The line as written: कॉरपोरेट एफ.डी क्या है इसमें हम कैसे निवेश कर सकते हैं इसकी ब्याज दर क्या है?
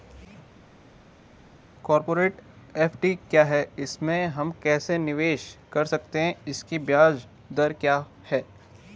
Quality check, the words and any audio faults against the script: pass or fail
pass